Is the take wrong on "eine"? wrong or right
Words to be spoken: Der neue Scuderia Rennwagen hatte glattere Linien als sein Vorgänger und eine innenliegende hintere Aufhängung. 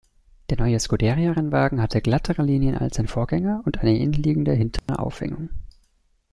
right